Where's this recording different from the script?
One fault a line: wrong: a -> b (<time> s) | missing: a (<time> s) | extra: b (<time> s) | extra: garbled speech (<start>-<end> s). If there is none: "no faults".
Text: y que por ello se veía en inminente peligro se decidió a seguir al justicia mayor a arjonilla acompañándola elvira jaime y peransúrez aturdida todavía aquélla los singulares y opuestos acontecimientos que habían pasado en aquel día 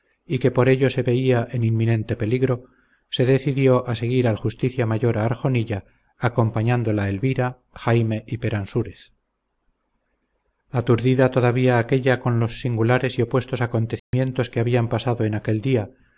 extra: con (12.2 s)